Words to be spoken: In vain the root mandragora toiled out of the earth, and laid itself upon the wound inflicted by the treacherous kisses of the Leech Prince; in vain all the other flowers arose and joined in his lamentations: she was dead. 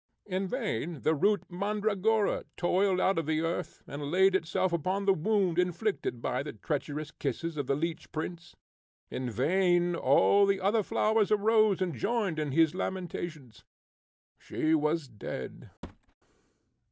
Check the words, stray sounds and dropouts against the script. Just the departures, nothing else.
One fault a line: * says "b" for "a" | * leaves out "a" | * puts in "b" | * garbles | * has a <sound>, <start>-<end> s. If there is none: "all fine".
* has a thud, 15.8-16.1 s